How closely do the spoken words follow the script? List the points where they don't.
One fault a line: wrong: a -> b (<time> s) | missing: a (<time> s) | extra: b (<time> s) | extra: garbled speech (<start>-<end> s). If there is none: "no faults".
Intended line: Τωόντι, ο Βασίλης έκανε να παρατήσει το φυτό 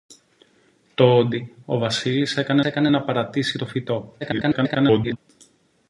extra: έκανε (2.6 s)
extra: garbled speech (4.2-5.2 s)